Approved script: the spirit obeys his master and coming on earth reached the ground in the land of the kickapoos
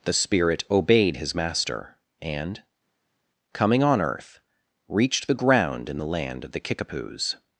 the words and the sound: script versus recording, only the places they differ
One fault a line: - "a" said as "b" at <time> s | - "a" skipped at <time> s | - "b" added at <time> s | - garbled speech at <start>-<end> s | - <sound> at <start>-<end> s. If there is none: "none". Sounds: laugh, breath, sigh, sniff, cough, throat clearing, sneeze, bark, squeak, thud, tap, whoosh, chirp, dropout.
- "obeys" said as "obeyed" at 0.7 s